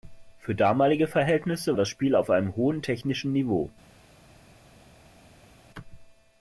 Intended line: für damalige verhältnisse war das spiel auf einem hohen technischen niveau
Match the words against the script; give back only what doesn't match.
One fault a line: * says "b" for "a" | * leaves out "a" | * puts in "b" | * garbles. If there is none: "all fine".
* leaves out "war"